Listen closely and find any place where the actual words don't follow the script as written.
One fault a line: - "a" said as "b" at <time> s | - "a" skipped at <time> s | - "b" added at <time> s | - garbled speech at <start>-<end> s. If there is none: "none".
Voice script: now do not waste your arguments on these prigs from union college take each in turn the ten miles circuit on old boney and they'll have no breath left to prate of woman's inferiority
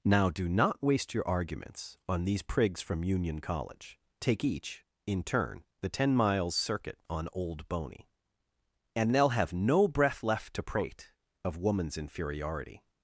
none